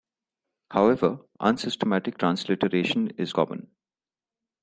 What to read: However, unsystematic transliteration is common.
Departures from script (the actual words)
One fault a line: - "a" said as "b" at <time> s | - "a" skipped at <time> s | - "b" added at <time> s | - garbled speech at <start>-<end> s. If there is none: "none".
none